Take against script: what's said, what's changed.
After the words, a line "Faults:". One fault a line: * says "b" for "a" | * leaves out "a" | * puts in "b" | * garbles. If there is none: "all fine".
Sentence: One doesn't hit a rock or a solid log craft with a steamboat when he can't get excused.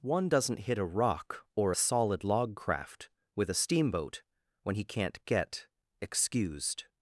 One doesn't hit a rock or a solid log craft with a steamboat when he can't get excused.
Faults:
all fine